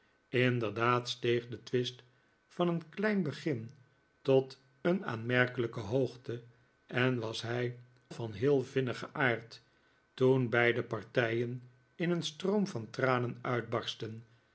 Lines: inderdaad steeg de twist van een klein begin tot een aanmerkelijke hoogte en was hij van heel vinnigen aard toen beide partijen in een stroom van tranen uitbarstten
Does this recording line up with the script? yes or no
yes